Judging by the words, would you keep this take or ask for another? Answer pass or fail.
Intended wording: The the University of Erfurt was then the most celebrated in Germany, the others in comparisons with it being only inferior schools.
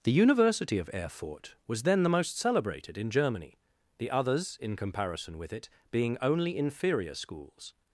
fail